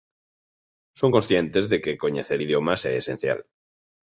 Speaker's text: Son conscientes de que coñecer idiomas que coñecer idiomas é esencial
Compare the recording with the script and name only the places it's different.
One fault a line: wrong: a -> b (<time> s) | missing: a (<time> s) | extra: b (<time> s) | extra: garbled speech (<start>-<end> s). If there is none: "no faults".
missing: que coñecer idiomas (2.8 s)